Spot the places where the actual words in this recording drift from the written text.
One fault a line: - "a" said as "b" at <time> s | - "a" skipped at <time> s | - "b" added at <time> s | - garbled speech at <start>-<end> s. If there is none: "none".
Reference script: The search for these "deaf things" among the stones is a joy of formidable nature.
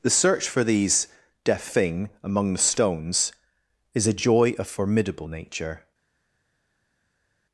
- "things" said as "thing" at 1.6 s